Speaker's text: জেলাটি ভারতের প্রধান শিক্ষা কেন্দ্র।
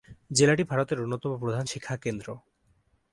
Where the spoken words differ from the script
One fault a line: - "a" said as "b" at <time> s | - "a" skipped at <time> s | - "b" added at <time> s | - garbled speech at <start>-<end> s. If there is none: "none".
- "অন্যতম" added at 1.0 s